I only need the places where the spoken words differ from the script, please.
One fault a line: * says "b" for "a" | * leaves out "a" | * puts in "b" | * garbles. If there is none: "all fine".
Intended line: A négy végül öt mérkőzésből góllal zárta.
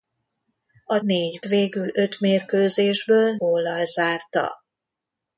all fine